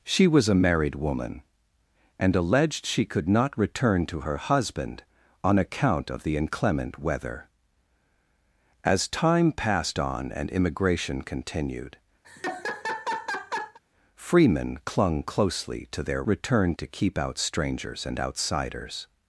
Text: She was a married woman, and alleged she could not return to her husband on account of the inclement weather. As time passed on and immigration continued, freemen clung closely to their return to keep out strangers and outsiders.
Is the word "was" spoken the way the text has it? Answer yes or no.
yes